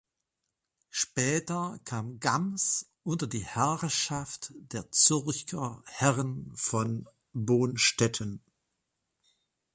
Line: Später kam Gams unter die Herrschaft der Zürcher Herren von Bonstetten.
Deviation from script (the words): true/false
false